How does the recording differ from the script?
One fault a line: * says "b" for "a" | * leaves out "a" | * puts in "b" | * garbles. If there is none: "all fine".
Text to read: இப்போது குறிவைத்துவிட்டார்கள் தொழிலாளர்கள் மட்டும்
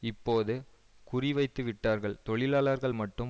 all fine